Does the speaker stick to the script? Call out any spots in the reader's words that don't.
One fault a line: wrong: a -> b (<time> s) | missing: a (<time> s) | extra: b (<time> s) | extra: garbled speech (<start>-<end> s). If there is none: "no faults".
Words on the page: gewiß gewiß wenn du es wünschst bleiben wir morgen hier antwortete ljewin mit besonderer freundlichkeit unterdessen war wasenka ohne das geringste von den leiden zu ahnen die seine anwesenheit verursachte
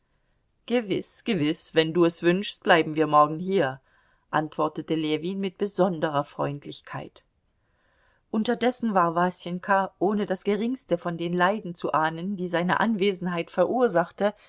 no faults